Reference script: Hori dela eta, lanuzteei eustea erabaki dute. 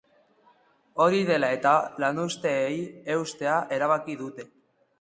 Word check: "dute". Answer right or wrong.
right